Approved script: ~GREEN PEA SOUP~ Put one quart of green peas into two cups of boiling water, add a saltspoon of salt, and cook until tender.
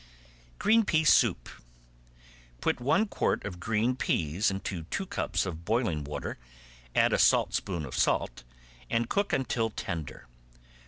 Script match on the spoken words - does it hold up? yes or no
yes